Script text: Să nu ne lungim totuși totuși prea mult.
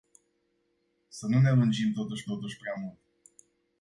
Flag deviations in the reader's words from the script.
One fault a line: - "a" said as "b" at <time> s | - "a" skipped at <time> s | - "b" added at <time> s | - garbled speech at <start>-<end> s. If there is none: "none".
none